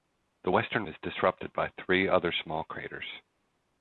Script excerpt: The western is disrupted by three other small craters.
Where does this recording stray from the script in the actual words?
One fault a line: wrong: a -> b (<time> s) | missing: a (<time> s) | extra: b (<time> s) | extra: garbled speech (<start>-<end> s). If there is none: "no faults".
no faults